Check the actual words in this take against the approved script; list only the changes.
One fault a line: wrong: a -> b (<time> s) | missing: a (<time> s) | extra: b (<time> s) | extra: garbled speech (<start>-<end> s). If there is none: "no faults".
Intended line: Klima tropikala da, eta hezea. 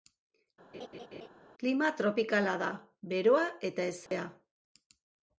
extra: beroa (3.1 s)